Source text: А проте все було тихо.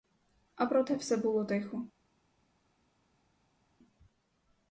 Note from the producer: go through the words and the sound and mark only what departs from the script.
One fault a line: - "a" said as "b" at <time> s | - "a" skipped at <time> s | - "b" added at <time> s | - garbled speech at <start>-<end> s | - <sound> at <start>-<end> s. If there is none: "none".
none